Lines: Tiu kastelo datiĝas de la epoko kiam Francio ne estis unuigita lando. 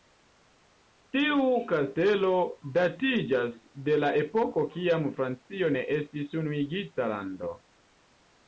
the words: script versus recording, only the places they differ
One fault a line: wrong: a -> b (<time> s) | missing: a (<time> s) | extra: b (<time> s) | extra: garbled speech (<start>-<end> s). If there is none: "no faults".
no faults